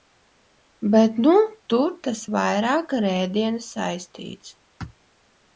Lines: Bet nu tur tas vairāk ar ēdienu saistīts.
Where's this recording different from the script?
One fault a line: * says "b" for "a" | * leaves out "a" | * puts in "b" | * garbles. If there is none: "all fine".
all fine